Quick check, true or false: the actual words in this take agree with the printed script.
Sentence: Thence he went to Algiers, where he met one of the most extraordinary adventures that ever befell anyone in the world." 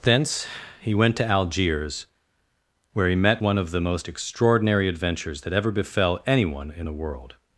true